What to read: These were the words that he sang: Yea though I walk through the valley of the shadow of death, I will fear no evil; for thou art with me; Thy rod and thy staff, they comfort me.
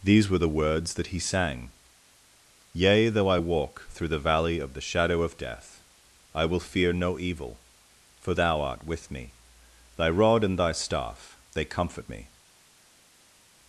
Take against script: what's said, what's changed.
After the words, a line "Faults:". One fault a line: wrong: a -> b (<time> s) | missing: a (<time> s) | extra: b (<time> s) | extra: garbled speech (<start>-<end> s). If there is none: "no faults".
These were the words that he sang: Yea though I walk through the valley of the shadow of death, I will fear no evil; for thou art with me; Thy rod and thy staff, they comfort me.
Faults:
no faults